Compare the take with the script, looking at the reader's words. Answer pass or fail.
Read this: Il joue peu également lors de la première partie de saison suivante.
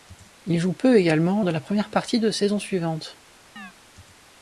fail